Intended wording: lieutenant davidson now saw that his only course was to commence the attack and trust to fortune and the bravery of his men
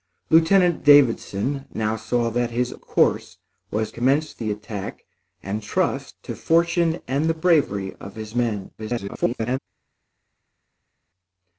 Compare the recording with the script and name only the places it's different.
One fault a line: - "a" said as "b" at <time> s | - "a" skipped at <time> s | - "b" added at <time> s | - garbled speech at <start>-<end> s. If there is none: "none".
- "only" skipped at 2.7 s
- "to" skipped at 3.9 s
- garbled speech at 8.8-9.6 s